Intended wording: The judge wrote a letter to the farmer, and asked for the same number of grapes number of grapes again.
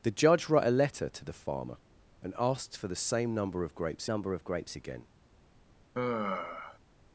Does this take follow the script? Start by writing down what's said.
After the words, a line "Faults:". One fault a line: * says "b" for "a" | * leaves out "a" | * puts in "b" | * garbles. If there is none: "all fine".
The judge wrote a letter to the farmer, and asked for the same number of grapes number of grapes again.
Faults:
all fine